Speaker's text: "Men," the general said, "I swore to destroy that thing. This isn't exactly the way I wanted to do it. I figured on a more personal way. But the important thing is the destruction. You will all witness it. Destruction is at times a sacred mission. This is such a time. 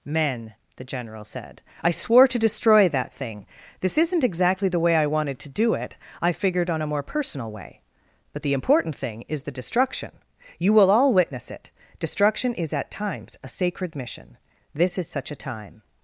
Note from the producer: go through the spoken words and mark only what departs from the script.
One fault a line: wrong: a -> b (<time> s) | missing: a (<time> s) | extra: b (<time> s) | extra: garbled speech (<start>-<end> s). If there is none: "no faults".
no faults